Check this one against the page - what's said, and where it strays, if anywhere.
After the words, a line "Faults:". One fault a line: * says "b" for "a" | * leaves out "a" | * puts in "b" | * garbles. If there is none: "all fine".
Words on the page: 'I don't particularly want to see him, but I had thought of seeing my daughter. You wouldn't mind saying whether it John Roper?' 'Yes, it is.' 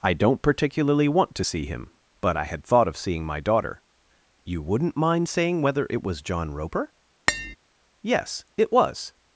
'I don't particularly want to see him, but I had thought of seeing my daughter. You wouldn't mind saying whether it was John Roper?' 'Yes, it was.'
Faults:
* puts in "was"
* says "was" for "is"